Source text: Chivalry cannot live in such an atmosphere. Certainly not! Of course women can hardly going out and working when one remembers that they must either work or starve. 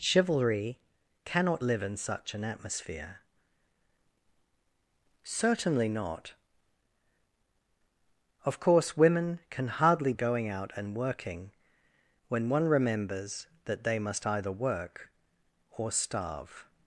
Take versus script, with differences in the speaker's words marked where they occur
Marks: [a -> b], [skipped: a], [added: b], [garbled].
Chivalry cannot live in such an atmosphere. Certainly not! Of course women can hardly going out and working when one remembers that they must either work or starve.